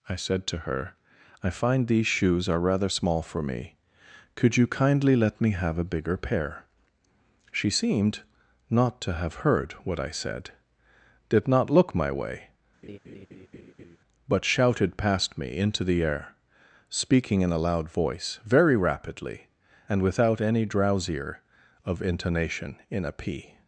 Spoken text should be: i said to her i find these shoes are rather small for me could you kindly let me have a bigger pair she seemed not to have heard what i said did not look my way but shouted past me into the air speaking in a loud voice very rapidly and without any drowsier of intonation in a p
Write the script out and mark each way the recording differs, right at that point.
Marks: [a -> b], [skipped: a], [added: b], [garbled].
i said to her i find these shoes are rather small for me could you kindly let me have a bigger pair she seemed not to have heard what i said did not look my way but shouted past me into the air speaking in a loud voice very rapidly and without any drowsier of intonation in a p